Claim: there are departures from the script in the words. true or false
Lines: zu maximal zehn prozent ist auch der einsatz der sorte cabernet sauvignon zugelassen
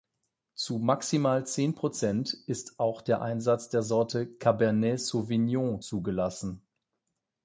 false